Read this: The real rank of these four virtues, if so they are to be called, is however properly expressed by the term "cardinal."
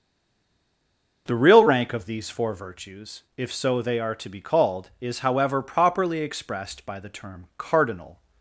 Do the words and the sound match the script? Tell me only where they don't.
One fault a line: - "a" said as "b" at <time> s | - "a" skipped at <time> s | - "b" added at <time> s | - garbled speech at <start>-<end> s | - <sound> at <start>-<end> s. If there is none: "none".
none